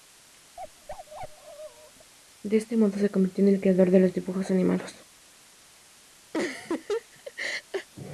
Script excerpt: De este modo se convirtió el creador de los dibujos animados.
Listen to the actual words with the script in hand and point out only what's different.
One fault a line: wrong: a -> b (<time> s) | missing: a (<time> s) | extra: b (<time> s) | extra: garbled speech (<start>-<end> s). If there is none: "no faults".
extra: en (3.4 s)